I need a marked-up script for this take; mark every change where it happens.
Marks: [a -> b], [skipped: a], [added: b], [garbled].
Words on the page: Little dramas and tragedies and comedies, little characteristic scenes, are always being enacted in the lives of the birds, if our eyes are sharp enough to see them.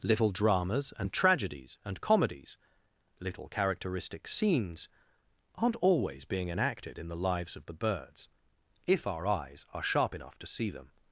Little dramas and tragedies and comedies, little characteristic scenes, [are -> aren't] always being enacted in the lives of the birds, if our eyes are sharp enough to see them.